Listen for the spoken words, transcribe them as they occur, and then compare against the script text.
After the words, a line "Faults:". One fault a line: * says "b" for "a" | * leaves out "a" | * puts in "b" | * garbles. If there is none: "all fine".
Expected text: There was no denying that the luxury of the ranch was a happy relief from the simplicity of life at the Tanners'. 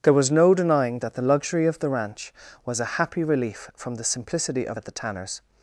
There was no denying that the luxury of the ranch was a happy relief from the simplicity of at the Tanners'.
Faults:
* leaves out "life"